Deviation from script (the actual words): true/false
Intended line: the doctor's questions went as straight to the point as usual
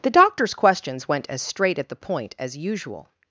true